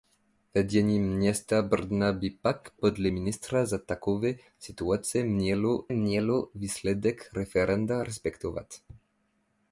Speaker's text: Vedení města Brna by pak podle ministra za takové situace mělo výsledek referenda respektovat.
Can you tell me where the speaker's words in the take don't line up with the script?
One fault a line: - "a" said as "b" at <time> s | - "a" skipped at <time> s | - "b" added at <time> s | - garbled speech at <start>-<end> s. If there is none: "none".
- "mělo" added at 5.9 s